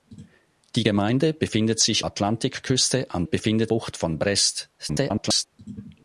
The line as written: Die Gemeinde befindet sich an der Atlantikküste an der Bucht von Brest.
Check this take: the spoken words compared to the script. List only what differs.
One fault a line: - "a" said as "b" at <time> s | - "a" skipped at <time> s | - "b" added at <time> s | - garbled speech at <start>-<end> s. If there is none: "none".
- "an der" skipped at 2.1 s
- "der" said as "befindet" at 3.2 s
- garbled speech at 4.8-5.5 s